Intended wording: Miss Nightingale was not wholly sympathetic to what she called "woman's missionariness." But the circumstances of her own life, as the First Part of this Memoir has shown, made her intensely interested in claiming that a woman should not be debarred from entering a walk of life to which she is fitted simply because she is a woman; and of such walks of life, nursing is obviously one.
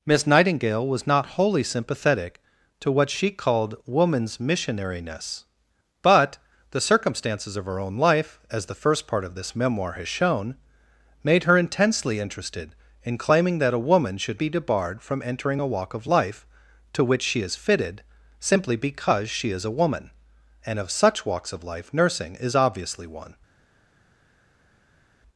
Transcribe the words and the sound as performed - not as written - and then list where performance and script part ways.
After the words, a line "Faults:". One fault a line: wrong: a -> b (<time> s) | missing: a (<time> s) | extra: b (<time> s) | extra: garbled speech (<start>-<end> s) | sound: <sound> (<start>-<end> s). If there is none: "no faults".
Miss Nightingale was not wholly sympathetic to what she called "woman's missionariness." But the circumstances of her own life, as the First Part of this Memoir has shown, made her intensely interested in claiming that a woman should be debarred from entering a walk of life to which she is fitted simply because she is a woman; and of such walks of life, nursing is obviously one.
Faults:
missing: not (14.4 s)